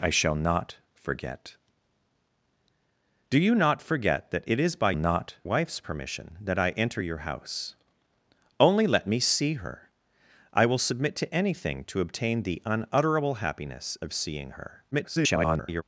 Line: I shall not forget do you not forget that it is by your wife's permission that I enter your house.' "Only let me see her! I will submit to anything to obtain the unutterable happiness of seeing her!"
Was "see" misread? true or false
false